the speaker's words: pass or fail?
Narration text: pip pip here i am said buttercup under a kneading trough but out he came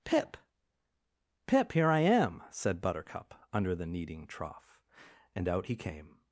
fail